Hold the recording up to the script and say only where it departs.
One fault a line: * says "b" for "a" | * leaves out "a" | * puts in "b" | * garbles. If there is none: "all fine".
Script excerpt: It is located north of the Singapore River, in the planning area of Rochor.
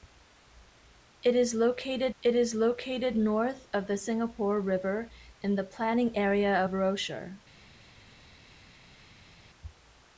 * puts in "it is located"